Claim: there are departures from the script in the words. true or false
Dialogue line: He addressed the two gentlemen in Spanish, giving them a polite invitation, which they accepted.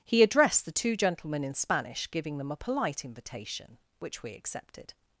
true